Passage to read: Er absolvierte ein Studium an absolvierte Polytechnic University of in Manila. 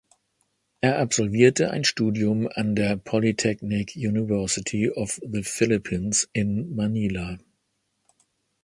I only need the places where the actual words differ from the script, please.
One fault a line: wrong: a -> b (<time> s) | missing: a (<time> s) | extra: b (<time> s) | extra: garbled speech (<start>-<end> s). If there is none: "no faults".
wrong: absolvierte -> der (2.8 s)
extra: the Philippines (5.3 s)